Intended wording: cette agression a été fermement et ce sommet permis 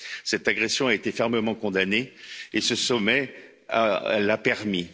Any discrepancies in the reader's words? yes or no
yes